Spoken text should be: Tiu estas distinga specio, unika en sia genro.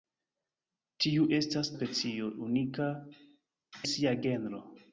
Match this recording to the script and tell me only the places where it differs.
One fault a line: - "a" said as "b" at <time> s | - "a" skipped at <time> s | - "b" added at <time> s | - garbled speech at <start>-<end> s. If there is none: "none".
- "distinga" skipped at 1.7 s
- "en" skipped at 2.9 s